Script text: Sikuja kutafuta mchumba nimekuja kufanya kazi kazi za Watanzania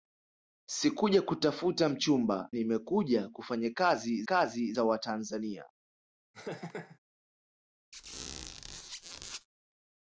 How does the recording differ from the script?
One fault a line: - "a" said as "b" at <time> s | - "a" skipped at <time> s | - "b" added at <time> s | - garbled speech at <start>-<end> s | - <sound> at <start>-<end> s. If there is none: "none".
- laugh at 6.3-7.0 s
- squeak at 7.9-9.5 s